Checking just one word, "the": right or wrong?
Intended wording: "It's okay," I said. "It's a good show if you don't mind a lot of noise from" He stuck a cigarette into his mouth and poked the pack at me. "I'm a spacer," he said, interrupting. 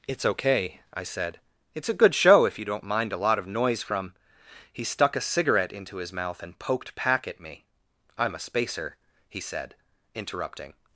wrong